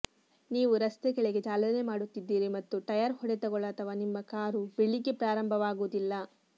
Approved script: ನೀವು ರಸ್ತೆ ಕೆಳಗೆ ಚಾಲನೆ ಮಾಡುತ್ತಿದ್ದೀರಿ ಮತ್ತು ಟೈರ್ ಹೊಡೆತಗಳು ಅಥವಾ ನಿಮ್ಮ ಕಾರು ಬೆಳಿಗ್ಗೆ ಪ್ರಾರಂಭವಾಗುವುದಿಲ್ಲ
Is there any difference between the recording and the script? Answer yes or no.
no